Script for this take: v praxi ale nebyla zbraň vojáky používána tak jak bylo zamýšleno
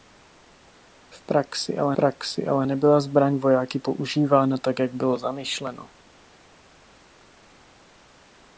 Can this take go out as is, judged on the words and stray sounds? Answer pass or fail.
fail